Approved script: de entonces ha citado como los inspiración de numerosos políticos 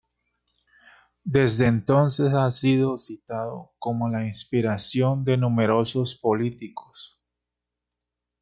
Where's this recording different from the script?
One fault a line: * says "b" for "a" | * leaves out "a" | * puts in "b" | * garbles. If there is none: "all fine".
* says "desde" for "de"
* puts in "sido"
* says "la" for "los"